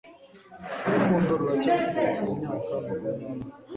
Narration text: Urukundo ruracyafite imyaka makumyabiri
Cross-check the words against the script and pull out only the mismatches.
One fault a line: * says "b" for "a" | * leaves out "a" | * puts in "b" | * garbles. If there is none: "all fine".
all fine